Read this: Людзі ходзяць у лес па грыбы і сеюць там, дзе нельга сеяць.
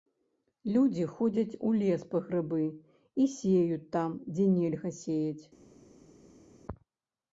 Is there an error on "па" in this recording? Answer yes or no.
no